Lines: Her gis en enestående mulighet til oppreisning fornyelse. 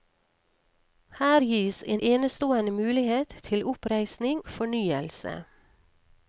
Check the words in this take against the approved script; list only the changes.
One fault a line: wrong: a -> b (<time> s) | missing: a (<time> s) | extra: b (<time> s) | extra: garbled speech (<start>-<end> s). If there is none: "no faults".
no faults